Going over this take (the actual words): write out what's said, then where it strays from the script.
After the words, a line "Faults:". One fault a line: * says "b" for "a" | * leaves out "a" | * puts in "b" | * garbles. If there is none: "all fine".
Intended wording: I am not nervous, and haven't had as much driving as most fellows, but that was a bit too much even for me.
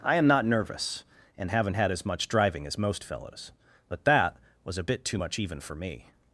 I am not nervous, and haven't had as much driving as most fellows, but that was a bit too much even for me.
Faults:
all fine